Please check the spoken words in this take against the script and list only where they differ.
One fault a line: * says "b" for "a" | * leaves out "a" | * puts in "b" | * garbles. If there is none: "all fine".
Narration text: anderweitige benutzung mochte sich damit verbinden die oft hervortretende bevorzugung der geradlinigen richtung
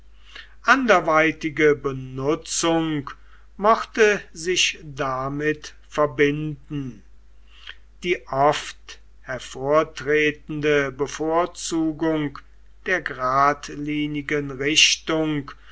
all fine